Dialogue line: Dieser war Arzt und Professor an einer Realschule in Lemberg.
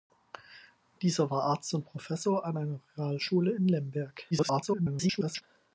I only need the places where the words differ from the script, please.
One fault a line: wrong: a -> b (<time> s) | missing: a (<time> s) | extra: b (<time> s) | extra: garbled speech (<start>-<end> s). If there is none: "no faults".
extra: garbled speech (4.3-5.4 s)